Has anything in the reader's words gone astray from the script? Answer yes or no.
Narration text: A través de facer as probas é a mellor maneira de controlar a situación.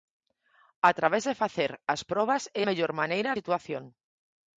yes